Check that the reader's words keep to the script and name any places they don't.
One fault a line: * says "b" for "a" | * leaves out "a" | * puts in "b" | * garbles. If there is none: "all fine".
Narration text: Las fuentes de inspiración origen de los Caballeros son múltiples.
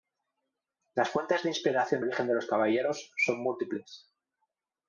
all fine